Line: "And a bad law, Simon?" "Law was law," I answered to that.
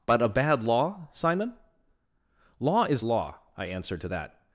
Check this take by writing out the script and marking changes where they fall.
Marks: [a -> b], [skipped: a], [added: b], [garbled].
["And -> But] a bad law, Simon?" "Law [was -> is] law," I answered to that.